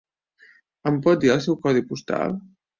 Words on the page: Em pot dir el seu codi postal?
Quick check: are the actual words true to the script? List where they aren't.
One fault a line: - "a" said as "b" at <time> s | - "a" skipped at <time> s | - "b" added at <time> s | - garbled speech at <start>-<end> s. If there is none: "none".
none